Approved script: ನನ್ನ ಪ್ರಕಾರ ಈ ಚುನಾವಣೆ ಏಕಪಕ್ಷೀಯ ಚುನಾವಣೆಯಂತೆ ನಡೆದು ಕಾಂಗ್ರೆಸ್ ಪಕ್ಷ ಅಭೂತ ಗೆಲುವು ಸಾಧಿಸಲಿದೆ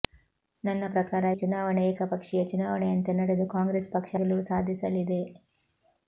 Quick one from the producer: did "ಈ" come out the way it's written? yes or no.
no